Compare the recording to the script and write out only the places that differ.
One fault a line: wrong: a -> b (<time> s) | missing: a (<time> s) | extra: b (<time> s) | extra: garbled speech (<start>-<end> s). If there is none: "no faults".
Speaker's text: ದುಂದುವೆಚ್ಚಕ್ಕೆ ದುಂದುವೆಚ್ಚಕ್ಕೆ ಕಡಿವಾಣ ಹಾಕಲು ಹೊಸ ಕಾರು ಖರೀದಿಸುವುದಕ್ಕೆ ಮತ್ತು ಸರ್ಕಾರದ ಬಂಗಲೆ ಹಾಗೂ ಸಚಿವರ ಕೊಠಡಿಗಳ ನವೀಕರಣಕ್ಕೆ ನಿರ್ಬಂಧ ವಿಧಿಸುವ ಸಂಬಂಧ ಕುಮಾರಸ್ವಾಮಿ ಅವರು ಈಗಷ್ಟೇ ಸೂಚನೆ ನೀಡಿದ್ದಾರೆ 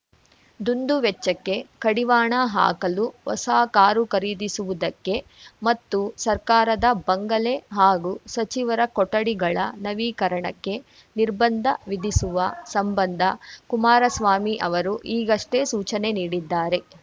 missing: ದುಂದುವೆಚ್ಚಕ್ಕೆ (1.6 s)